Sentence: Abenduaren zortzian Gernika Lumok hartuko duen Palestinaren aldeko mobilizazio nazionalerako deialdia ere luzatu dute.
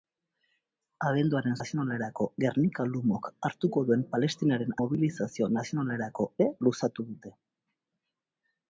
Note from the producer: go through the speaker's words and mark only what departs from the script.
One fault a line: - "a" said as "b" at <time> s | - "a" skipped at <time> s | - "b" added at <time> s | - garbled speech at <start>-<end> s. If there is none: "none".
- "zortzian" said as "nazionalerako" at 1.6 s
- "aldeko" skipped at 4.8 s
- "deialdia" skipped at 6.3 s